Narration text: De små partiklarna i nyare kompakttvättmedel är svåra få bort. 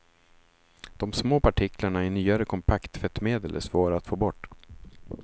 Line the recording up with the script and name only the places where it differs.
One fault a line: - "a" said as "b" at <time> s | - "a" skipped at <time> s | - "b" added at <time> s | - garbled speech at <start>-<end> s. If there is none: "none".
- "att" added at 4.0 s